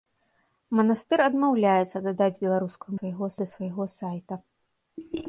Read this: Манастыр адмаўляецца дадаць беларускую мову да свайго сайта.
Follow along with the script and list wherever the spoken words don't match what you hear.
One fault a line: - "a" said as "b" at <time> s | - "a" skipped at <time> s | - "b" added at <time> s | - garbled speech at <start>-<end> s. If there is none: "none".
- "мову" said as "свайго" at 3.0 s